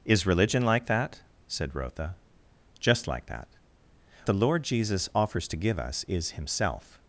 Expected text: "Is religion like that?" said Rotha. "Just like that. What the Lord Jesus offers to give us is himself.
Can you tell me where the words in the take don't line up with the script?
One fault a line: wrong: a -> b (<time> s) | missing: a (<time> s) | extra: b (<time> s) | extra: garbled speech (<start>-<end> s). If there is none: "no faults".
missing: What (3.5 s)